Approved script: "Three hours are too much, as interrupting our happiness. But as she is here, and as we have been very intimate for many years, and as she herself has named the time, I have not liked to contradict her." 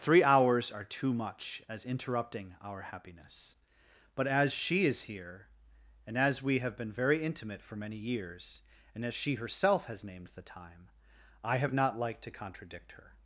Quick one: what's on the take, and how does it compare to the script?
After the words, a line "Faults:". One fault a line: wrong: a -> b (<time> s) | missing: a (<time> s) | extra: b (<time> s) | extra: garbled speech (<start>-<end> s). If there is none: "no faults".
"Three hours are too much, as interrupting our happiness. But as she is here, and as we have been very intimate for many years, and as she herself has named the time, I have not liked to contradict her."
Faults:
no faults